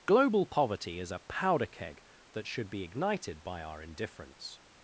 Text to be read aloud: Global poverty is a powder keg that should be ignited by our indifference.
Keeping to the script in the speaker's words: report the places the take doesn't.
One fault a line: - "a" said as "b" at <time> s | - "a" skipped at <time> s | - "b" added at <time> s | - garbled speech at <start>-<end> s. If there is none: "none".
none